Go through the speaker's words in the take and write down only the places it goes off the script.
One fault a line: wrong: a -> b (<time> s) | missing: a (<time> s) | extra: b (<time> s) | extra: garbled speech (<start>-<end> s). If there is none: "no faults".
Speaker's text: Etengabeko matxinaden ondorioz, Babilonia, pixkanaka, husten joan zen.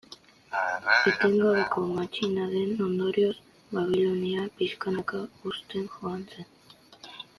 no faults